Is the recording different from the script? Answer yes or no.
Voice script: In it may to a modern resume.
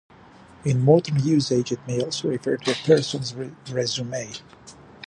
yes